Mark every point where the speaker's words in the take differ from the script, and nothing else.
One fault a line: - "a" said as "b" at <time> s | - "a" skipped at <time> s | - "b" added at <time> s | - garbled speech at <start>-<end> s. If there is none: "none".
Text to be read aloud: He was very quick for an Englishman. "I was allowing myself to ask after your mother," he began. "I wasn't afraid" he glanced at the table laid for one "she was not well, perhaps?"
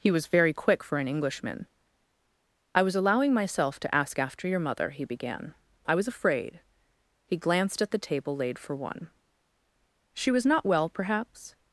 - "wasn't" said as "was" at 5.9 s